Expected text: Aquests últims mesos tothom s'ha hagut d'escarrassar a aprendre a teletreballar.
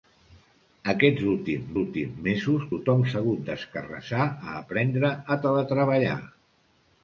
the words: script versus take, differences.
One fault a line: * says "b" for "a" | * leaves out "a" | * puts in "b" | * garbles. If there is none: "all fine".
* puts in "últims"